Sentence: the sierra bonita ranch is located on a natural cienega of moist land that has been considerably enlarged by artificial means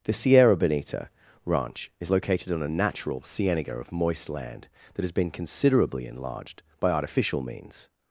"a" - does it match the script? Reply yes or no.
yes